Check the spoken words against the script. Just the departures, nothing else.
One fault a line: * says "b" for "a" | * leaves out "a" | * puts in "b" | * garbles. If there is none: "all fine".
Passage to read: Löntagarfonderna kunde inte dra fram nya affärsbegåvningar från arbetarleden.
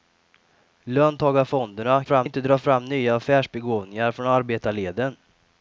* says "fram" for "kunde"